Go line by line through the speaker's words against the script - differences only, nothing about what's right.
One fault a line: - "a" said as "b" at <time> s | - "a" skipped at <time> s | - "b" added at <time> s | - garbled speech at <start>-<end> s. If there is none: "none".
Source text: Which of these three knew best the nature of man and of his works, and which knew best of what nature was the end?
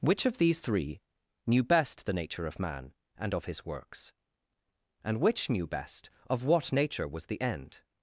none